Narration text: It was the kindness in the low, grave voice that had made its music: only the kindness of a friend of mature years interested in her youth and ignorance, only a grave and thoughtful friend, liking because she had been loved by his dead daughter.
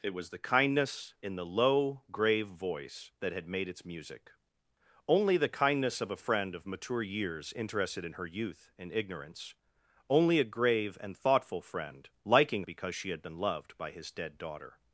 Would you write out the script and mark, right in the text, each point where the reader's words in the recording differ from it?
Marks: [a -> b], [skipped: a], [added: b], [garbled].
It was the kindness in the low, grave voice that had made its music: only the kindness of a friend of mature years interested in her youth and ignorance, only a grave and thoughtful friend, liking because she had been loved by his dead daughter.